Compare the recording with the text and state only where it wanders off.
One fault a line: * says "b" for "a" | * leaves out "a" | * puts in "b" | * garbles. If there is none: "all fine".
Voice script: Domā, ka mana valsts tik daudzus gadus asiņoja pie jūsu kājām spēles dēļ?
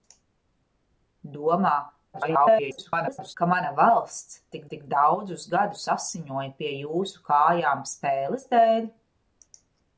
* garbles
* puts in "tik"